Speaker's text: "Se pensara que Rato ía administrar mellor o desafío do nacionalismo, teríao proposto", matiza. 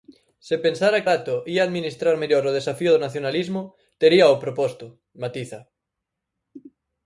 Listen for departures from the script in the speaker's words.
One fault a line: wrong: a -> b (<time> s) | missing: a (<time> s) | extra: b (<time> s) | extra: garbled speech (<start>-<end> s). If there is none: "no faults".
missing: que (1.1 s)